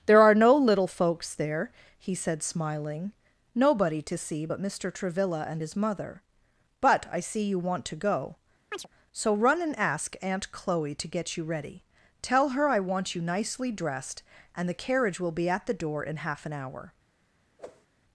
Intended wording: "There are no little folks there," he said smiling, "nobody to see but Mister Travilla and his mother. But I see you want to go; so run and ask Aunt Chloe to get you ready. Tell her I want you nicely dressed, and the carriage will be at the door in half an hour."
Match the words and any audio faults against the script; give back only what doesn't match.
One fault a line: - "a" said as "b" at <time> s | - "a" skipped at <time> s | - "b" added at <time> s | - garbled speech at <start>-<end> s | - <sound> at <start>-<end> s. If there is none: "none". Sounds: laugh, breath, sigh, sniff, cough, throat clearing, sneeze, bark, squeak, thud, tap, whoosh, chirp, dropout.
- chirp at 8.7-8.9 s
- whoosh at 17.6-17.9 s